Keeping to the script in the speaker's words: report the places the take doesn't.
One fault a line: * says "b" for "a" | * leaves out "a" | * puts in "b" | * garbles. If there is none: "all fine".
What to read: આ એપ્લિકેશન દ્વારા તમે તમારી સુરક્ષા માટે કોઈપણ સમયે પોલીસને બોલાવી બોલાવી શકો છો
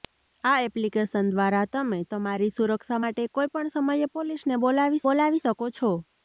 all fine